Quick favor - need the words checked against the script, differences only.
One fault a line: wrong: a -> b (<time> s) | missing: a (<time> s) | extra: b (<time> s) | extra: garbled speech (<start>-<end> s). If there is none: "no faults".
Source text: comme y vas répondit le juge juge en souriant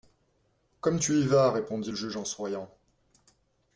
extra: tu (1.0 s)
missing: juge (2.2 s)